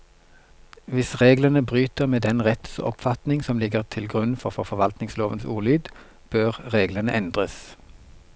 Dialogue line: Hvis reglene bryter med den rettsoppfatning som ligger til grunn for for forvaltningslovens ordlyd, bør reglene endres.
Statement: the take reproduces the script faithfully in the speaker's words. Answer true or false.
true